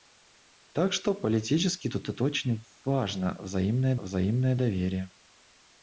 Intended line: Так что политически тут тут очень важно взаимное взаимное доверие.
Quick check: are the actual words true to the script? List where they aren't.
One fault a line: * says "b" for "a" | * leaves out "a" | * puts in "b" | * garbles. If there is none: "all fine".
all fine